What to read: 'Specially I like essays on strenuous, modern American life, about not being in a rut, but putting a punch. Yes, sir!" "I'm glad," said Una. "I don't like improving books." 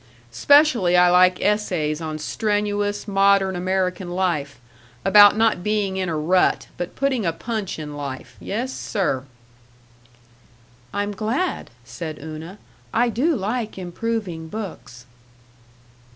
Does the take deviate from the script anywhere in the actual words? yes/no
yes